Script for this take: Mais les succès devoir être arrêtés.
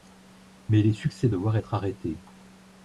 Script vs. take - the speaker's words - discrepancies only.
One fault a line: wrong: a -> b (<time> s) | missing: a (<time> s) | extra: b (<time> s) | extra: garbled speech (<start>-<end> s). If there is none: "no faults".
no faults